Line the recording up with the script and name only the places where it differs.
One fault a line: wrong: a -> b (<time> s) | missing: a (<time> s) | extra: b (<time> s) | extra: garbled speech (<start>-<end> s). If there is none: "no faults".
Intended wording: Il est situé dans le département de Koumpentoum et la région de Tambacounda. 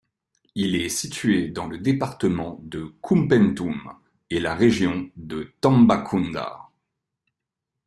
no faults